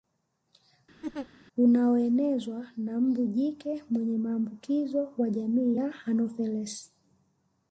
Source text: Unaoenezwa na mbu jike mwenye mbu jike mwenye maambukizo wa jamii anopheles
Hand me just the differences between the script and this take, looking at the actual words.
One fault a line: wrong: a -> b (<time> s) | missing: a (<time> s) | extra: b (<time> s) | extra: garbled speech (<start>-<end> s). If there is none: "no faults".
missing: mbu jike mwenye (4.2 s)
extra: ya (5.8 s)